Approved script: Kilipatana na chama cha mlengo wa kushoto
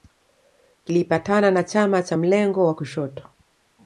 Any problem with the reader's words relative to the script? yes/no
no